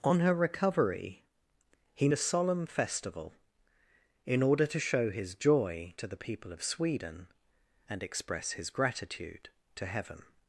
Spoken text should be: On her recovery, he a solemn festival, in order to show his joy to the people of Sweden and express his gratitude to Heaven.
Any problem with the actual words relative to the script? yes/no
no